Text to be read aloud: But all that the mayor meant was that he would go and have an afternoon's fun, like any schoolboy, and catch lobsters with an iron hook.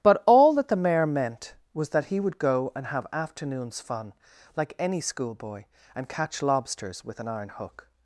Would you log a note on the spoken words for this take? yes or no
yes